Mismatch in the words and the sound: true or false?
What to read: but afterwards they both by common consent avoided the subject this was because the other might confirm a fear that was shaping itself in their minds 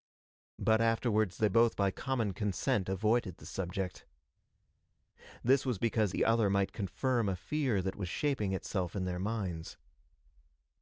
false